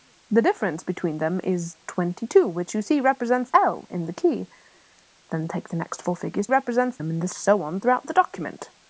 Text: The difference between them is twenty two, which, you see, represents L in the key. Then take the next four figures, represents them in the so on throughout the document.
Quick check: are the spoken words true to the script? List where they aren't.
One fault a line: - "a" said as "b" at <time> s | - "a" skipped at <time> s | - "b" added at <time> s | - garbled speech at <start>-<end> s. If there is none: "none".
none